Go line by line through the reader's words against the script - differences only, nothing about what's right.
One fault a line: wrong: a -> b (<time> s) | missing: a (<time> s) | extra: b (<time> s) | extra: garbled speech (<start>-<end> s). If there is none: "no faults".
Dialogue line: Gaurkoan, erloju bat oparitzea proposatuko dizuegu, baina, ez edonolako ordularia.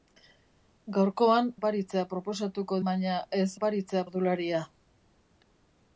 missing: erloju bat (1.5 s)
missing: dizuegu (2.8 s)
wrong: edonolako -> oparitzea (3.6 s)